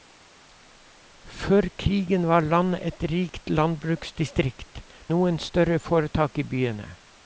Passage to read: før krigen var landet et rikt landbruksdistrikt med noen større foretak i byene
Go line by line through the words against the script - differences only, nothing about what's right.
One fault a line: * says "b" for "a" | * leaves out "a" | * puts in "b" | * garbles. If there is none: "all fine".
* leaves out "med"